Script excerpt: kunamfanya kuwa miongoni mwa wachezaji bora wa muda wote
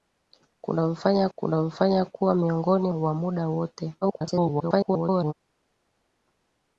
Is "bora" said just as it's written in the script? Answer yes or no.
no